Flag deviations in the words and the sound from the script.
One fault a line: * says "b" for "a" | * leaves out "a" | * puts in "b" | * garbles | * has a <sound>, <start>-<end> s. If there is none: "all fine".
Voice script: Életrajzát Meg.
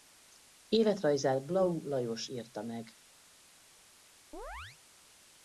* puts in "Blau Lajos írta"
* has a chirp, 4.3-4.8 s